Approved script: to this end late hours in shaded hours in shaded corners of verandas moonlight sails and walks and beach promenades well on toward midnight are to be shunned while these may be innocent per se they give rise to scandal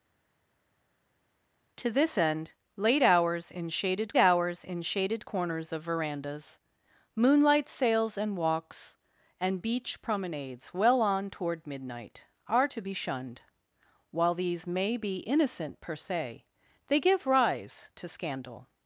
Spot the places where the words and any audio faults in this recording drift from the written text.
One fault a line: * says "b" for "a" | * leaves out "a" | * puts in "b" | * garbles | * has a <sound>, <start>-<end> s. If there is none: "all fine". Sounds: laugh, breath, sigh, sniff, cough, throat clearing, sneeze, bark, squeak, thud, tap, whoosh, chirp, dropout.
all fine